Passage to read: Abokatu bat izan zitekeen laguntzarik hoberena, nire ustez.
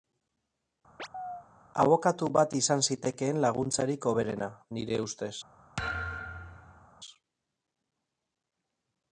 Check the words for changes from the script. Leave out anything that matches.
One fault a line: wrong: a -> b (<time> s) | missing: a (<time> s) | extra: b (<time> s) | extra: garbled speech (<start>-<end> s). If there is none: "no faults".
no faults